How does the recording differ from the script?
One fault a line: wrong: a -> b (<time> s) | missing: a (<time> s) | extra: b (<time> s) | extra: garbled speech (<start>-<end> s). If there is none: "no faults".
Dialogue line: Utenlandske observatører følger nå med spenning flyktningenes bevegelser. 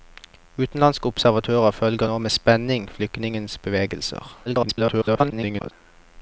extra: garbled speech (4.5-5.7 s)